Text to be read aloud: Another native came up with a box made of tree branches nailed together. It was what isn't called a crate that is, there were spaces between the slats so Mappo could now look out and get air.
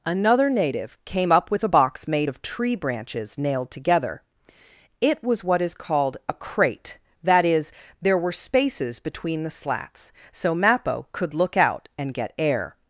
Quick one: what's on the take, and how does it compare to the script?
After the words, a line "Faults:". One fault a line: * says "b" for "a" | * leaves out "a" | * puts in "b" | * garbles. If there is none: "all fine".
Another native came up with a box made of tree branches nailed together. It was what is called a crate that is, there were spaces between the slats so Mappo could look out and get air.
Faults:
* says "is" for "isn't"
* leaves out "now"